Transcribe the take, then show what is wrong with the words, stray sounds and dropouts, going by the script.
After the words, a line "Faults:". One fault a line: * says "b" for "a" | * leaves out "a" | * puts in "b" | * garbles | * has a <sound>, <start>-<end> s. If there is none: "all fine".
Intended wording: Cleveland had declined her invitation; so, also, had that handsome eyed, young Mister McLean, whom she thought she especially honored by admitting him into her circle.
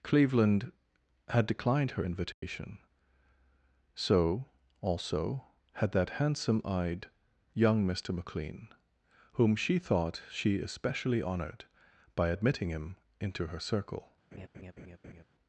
Cleveland had declined her invitation; so, also, had that handsome eyed, young Mister McLean, whom she thought she especially honored by admitting him into her circle.
Faults:
* has a dropout, 2.3-2.4 s
* has a laugh, 14.3-15.2 s